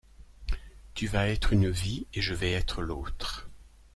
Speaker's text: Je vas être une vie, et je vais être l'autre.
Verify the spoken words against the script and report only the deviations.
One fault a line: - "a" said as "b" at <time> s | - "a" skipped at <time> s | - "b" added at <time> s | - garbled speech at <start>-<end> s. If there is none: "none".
- "Je" said as "Tu" at 0.9 s